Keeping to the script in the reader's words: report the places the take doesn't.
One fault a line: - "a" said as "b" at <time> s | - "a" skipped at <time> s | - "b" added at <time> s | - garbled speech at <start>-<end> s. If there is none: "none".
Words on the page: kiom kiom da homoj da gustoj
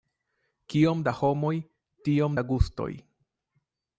- "kiom" skipped at 1.0 s
- "tiom" added at 2.1 s